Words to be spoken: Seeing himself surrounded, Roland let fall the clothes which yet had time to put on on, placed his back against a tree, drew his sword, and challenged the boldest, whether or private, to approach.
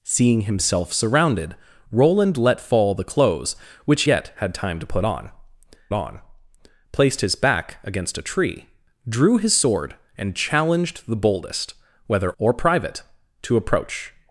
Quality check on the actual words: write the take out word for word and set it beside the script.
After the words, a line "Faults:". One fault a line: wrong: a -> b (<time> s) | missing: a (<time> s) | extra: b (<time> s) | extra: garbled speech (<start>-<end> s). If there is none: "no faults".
Seeing himself surrounded, Roland let fall the clothes which yet had time to put on on, placed his back against a tree, drew his sword, and challenged the boldest, whether or private, to approach.
Faults:
no faults